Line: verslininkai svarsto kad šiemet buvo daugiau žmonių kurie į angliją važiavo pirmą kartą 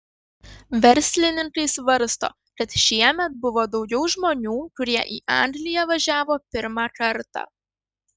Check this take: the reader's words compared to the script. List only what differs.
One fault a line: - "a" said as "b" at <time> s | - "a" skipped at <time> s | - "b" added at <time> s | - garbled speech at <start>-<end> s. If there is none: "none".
none